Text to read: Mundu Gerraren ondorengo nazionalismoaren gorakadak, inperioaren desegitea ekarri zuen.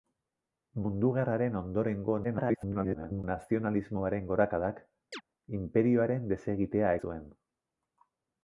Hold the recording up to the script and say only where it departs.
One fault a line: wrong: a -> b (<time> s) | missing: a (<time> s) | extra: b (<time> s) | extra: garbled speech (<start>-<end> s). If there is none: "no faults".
extra: garbled speech (2.2-3.2 s)
missing: ekarri (6.9 s)